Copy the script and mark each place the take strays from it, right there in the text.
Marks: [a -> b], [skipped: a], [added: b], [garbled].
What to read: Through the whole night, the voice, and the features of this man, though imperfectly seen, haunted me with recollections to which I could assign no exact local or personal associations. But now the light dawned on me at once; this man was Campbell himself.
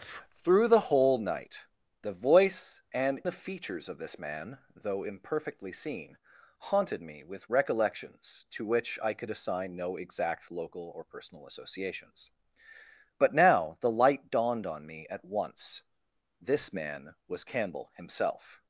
Through the whole night, the voice, and the features of this man, though imperfectly seen, haunted me with recollections to which I could assign no exact local or personal associations. But now the light dawned on me at once; this man was Campbell himself.